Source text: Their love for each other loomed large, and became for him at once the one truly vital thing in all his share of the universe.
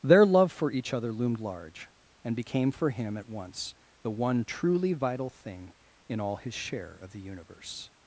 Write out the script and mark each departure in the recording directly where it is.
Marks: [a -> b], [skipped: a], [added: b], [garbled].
Their love for each other loomed large, and became for him at once the one truly vital thing in all his share of the universe.